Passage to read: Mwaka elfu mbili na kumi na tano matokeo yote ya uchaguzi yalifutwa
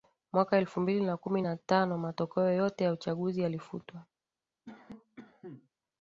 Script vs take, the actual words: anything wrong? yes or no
no